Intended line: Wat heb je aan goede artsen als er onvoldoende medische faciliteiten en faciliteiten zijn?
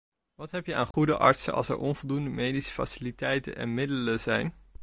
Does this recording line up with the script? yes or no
no